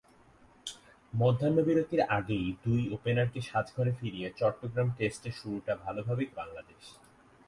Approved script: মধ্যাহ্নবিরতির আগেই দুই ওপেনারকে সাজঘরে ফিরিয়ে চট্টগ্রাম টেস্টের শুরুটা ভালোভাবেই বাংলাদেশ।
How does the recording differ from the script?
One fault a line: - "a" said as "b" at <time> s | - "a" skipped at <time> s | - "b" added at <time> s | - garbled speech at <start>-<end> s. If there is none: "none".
none